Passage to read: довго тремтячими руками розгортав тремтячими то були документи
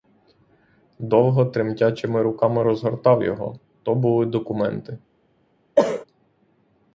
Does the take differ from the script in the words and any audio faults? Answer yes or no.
yes